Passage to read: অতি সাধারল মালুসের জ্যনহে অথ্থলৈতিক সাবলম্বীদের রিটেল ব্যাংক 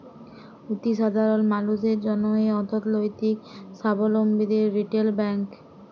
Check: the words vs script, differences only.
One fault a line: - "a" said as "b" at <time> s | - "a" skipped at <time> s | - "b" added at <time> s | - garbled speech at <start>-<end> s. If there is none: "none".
none